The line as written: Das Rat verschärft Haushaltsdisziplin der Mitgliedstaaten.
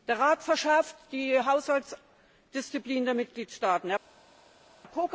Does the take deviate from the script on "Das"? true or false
true